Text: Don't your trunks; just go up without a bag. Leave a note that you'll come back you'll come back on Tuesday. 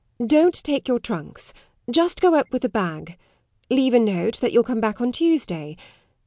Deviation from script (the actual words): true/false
true